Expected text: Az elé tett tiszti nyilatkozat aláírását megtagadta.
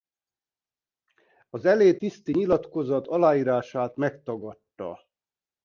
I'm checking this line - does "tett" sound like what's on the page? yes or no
no